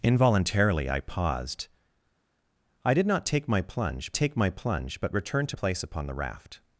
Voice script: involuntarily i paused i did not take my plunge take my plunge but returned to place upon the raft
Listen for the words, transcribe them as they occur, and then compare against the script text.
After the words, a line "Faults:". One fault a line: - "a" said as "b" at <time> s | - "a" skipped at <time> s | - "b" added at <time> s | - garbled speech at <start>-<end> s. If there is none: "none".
involuntarily i paused i did not take my plunge take my plunge but returned to place upon the raft
Faults:
none